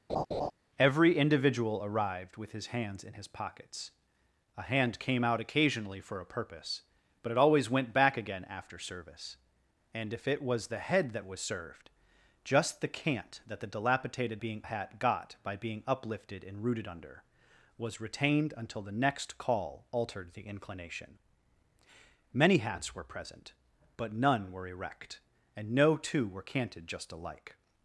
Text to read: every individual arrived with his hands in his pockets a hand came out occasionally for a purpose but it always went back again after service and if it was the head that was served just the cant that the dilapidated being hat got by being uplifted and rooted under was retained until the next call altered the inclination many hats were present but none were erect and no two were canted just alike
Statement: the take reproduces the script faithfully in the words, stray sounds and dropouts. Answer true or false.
false